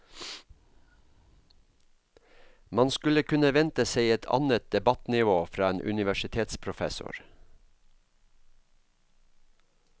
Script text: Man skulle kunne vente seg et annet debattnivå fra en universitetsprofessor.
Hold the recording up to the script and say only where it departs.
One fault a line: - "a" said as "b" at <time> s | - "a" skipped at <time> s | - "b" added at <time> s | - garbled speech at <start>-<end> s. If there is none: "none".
none